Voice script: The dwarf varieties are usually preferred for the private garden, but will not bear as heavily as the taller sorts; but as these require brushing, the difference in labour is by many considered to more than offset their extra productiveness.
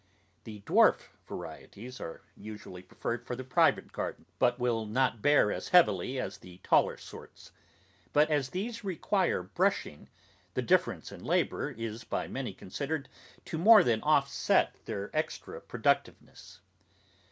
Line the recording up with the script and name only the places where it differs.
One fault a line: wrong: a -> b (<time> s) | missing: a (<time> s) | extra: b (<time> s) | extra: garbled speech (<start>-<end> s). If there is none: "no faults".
no faults